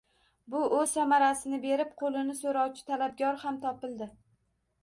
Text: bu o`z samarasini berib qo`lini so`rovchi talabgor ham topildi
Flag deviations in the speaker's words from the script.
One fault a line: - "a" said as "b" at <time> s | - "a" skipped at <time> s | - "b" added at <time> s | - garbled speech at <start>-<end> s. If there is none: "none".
none